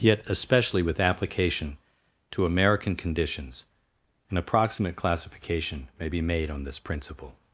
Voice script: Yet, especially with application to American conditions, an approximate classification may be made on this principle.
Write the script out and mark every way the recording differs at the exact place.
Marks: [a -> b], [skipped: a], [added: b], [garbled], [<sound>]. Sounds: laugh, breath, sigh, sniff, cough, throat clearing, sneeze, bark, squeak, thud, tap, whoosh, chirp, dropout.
Yet, especially with application to American conditions, an approximate classification may be made on this principle.